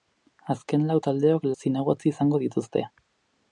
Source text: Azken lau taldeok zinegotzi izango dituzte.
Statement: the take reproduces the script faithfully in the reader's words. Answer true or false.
true